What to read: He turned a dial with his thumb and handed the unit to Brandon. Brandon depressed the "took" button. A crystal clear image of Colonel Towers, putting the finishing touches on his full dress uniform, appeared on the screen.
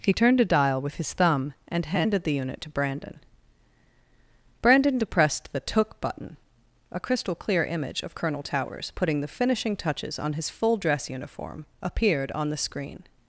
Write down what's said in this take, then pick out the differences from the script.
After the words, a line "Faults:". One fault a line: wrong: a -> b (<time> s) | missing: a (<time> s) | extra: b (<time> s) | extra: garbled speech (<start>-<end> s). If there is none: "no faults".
He turned a dial with his thumb and handed the unit to Brandon. Brandon depressed the "took" button. A crystal clear image of Colonel Towers, putting the finishing touches on his full dress uniform, appeared on the screen.
Faults:
no faults